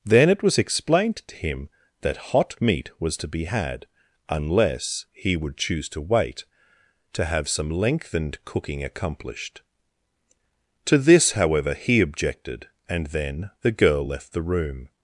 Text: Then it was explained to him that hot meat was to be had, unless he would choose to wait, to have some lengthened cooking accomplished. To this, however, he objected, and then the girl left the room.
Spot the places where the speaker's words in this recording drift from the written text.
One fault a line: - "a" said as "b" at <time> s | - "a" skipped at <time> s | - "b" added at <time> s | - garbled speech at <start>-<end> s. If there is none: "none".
none